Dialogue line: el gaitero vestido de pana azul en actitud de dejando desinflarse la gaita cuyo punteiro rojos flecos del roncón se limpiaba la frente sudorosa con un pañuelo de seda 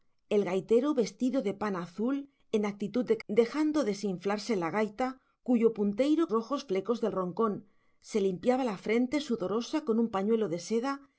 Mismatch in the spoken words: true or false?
false